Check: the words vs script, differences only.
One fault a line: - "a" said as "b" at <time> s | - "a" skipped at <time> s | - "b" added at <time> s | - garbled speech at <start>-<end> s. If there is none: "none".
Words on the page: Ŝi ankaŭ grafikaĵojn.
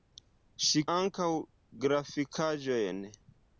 none